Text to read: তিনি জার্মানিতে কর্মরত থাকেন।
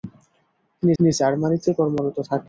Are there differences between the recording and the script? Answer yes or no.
yes